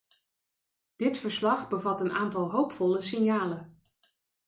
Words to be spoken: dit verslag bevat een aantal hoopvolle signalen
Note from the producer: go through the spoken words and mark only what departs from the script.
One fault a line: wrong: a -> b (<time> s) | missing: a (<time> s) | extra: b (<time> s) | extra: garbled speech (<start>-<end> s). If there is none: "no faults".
no faults